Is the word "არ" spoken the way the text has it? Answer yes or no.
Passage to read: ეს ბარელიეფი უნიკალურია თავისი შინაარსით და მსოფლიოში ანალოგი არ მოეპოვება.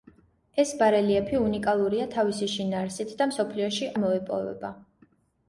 no